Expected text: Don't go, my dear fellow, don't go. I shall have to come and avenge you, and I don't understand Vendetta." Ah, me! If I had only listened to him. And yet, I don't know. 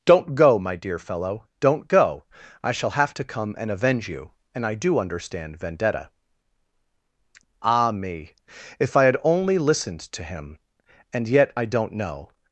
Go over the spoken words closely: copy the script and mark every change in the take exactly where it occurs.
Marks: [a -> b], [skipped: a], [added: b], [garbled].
Don't go, my dear fellow, don't go. I shall have to come and avenge you, and I [don't -> do] understand Vendetta." Ah, me! If I had only listened to him. And yet, I don't know.